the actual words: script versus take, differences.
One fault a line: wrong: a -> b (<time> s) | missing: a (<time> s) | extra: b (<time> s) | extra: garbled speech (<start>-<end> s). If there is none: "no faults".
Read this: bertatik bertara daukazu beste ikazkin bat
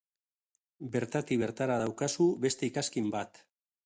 no faults